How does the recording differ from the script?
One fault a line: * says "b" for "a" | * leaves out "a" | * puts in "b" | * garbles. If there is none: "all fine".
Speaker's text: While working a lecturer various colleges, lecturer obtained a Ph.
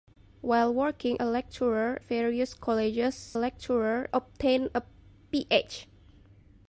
all fine